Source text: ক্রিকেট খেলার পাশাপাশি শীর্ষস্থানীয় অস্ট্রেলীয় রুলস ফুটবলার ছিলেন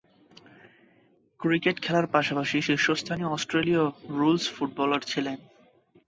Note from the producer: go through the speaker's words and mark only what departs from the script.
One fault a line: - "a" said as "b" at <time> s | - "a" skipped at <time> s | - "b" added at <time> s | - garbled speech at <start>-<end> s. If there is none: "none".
none